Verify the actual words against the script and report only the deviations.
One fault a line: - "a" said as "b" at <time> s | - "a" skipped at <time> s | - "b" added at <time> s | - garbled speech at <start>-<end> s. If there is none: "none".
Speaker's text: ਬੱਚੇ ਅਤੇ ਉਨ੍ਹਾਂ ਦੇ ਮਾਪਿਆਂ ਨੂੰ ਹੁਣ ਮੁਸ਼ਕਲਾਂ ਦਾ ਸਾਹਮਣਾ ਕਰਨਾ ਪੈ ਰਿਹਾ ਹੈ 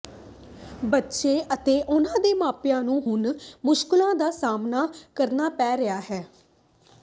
none